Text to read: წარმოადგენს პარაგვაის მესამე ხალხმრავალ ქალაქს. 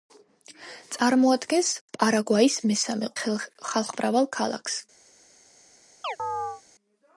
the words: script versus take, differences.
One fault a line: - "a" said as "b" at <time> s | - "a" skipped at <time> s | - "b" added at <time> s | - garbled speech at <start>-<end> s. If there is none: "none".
none